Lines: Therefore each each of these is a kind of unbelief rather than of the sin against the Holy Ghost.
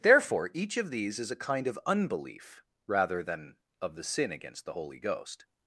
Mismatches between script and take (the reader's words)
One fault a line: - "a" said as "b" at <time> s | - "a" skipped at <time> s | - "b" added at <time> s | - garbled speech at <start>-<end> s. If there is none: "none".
- "each" skipped at 0.8 s